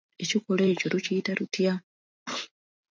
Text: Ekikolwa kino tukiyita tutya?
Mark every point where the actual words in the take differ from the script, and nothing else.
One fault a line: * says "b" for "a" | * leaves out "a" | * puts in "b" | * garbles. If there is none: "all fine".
* says "ekyo" for "kino"